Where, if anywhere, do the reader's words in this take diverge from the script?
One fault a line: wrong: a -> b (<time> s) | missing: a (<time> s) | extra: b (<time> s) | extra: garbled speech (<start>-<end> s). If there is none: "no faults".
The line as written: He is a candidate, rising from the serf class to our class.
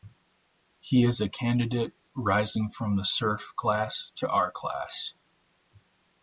no faults